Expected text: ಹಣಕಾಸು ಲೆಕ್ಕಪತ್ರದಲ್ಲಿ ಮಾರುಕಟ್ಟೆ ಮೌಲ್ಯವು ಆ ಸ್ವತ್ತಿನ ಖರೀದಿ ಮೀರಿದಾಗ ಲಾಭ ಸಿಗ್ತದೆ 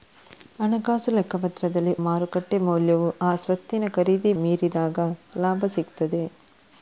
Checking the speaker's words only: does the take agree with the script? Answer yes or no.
yes